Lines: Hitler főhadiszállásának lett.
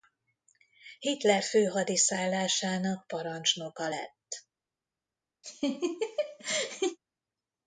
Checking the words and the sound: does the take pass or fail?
fail